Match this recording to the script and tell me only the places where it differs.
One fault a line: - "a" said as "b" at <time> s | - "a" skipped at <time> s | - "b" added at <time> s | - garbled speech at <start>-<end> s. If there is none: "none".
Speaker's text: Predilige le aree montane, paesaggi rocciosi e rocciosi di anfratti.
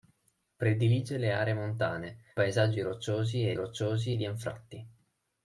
none